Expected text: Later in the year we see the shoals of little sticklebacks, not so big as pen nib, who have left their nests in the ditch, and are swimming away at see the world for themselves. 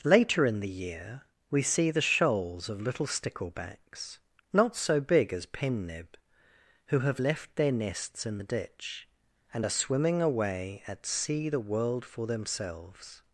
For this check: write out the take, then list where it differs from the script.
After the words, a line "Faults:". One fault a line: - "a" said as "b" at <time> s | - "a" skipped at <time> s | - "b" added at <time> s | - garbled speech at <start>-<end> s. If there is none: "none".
Later in the year we see the shoals of little sticklebacks, not so big as pen nib, who have left their nests in the ditch, and are swimming away at see the world for themselves.
Faults:
none